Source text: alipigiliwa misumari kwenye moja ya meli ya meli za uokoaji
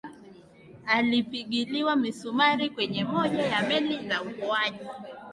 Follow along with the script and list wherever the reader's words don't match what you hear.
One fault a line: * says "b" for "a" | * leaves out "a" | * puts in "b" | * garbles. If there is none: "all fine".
* leaves out "ya meli"